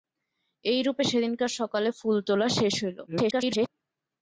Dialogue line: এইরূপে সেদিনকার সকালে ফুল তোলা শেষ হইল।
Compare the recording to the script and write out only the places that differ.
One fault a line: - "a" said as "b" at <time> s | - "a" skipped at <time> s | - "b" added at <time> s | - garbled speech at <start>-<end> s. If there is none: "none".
- garbled speech at 3.1-3.7 s